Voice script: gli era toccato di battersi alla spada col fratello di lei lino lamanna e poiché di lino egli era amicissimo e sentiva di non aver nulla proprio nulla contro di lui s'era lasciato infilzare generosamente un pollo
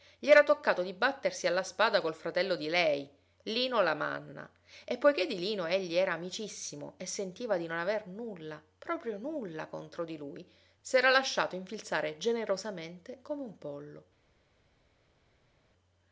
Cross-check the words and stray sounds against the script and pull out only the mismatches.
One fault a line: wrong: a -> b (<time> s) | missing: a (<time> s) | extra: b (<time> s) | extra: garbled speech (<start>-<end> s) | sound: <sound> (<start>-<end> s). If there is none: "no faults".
extra: come (13.2 s)